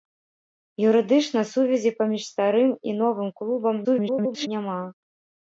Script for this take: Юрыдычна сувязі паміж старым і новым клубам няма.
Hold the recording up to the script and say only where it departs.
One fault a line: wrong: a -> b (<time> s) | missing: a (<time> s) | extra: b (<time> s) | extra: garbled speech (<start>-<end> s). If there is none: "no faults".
extra: garbled speech (3.8-4.5 s)